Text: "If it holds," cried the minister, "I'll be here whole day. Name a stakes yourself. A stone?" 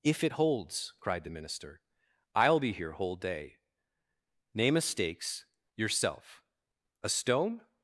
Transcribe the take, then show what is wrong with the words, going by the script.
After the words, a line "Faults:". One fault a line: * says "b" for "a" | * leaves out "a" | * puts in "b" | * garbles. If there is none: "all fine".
"If it holds," cried the minister, "I'll be here whole day. Name a stakes yourself. A stone?"
Faults:
all fine